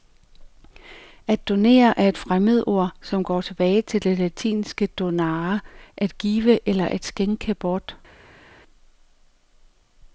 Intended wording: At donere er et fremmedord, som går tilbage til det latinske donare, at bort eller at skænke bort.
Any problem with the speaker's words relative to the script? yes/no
yes